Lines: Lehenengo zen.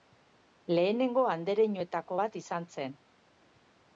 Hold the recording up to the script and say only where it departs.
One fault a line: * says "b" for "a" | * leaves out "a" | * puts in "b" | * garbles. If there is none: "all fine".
* puts in "andereñoetako bat izan"